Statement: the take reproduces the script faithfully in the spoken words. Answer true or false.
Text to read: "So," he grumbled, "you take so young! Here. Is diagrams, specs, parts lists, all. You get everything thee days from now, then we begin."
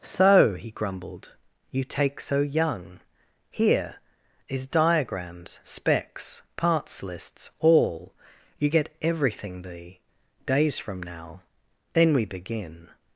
true